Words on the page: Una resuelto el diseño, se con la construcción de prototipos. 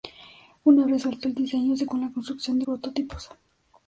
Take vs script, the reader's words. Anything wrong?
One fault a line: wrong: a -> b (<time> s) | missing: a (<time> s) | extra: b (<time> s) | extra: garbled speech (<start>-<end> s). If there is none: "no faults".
no faults